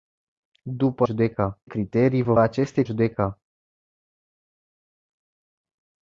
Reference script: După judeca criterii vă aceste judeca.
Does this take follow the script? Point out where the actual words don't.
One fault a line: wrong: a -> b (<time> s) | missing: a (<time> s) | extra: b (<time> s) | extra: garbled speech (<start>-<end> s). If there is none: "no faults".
no faults